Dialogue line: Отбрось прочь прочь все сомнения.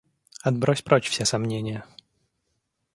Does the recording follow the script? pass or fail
fail